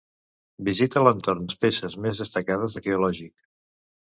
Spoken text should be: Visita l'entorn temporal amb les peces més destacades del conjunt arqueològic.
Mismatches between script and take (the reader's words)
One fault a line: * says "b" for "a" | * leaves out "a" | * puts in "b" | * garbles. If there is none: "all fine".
* leaves out "temporal amb"
* leaves out "del conjunt"